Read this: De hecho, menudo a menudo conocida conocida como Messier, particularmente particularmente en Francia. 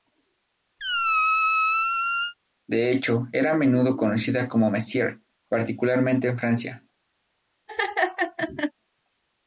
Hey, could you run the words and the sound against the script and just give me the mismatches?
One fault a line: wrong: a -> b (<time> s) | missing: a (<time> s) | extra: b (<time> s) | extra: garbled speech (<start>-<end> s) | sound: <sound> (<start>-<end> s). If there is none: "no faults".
sound: squeak (0.8-2.3 s)
wrong: menudo -> era (3.3 s)
missing: conocida (4.5 s)
missing: particularmente (6.3 s)
sound: laugh (7.7-8.7 s)